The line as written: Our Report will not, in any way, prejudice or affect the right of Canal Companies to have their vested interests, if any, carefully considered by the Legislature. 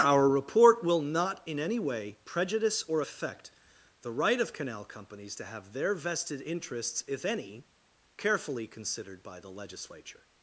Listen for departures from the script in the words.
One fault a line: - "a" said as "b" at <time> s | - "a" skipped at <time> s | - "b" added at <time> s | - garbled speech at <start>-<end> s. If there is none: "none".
none